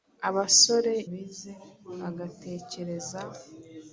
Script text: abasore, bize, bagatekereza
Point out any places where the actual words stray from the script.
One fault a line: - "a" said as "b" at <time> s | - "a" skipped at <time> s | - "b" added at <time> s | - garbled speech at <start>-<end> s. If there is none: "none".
none